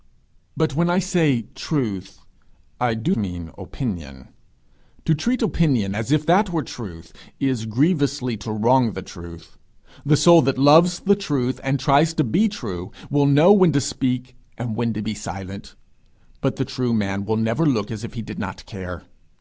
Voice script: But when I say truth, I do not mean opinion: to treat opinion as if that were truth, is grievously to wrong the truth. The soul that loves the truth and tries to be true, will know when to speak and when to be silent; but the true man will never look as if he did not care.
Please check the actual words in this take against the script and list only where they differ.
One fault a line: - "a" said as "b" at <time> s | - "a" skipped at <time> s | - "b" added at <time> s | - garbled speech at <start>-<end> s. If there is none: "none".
- "not" skipped at 3.1 s